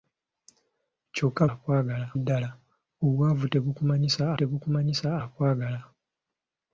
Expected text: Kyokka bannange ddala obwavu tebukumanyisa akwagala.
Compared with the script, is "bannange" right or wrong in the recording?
wrong